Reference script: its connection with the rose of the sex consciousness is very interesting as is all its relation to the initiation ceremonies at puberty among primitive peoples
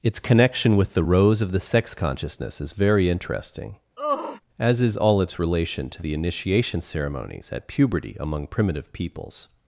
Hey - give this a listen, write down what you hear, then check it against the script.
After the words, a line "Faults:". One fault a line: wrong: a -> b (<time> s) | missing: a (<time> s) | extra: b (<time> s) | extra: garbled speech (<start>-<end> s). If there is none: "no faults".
its connection with the rose of the sex consciousness is very interesting as is all its relation to the initiation ceremonies at puberty among primitive peoples
Faults:
no faults